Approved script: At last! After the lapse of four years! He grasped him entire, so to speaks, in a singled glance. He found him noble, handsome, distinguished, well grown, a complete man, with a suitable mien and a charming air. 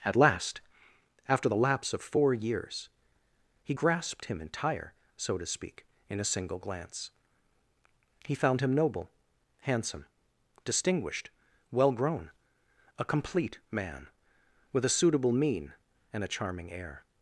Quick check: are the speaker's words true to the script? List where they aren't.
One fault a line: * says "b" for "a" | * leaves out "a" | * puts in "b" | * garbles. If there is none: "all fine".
* says "speak" for "speaks"
* says "single" for "singled"